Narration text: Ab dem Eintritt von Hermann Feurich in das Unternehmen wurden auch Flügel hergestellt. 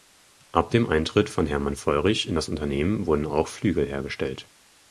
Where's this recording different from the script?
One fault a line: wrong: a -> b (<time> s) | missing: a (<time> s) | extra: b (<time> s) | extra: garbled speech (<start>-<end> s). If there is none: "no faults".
no faults